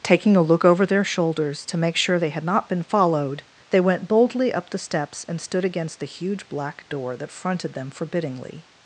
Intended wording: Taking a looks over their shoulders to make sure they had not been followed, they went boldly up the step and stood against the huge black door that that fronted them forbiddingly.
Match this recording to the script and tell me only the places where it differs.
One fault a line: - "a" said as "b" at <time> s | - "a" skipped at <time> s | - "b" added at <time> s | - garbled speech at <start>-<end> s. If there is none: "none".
- "looks" said as "look" at 0.4 s
- "step" said as "steps" at 4.8 s
- "that" skipped at 7.3 s